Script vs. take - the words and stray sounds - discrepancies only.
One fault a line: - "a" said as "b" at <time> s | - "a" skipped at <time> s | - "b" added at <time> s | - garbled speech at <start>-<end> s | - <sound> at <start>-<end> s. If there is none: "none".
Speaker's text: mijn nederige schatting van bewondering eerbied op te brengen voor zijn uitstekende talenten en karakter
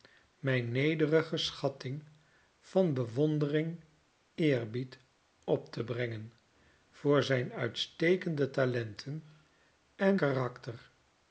none